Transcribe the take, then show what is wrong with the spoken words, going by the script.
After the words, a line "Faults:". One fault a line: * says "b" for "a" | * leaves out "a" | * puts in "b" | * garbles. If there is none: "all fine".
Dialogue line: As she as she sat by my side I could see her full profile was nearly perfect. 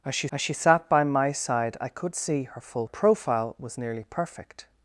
As she as she sat by my side I could see her full profile was nearly perfect.
Faults:
all fine